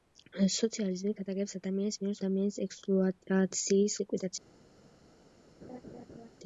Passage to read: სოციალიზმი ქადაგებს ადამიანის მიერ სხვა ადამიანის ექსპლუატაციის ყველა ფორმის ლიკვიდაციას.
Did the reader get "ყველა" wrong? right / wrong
wrong